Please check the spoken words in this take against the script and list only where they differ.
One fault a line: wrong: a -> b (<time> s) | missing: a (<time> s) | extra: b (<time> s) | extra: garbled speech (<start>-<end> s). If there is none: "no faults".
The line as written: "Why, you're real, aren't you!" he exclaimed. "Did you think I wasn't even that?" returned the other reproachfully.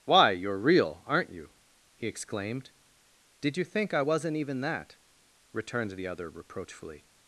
no faults